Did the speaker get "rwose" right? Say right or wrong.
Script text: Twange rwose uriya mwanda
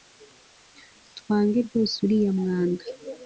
right